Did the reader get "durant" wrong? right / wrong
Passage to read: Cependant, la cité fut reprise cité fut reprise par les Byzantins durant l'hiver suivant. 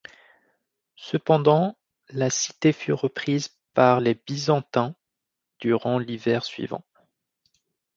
right